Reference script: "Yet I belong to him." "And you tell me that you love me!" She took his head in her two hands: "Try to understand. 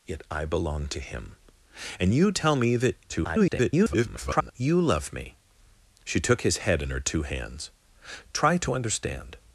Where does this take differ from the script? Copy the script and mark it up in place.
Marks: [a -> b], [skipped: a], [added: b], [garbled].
"Yet I belong to him." "And you tell me that [garbled] you love me!" She took his head in her two hands: "Try to understand.